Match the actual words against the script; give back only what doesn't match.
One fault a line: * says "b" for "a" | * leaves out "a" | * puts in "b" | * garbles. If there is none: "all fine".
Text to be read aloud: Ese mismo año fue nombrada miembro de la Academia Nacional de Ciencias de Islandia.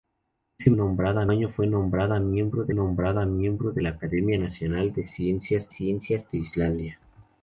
* says "nombrada" for "mismo"
* puts in "nombrada miembro de"
* puts in "Ciencias"